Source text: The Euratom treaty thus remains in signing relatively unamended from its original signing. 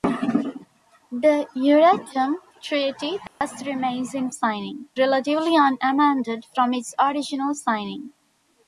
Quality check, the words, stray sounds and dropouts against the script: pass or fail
fail